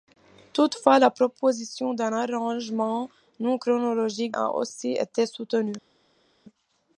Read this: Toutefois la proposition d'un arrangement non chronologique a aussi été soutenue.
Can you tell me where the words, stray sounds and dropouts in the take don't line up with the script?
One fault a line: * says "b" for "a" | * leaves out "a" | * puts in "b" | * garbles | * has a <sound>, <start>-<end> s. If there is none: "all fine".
all fine